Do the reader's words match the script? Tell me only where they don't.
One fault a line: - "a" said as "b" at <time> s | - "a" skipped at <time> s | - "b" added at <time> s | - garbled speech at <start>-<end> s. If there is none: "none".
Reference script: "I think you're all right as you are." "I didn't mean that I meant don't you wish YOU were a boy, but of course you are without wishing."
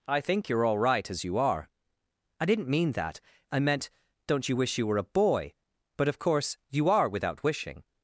none